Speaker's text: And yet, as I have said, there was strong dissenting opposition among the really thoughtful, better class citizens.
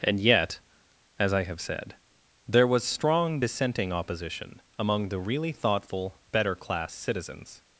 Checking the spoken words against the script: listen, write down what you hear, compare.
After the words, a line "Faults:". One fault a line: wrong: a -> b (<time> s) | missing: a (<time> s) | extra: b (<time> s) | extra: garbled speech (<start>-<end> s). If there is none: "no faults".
And yet, as I have said, there was strong dissenting opposition among the really thoughtful, better class citizens.
Faults:
no faults